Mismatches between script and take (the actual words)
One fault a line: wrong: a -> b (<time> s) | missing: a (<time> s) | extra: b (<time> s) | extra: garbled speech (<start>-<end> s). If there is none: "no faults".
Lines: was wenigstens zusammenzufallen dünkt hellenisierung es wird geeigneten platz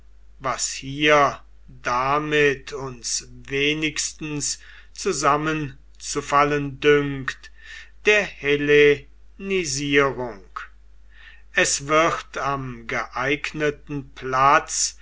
extra: hier damit uns (0.8 s)
extra: der (8.0 s)
extra: am (12.4 s)